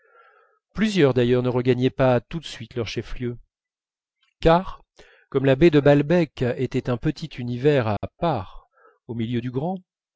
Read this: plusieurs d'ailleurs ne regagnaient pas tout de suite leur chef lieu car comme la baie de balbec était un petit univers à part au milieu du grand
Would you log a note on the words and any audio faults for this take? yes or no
yes